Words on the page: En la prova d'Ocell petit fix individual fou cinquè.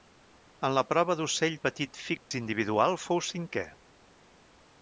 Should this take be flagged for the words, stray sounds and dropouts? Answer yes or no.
yes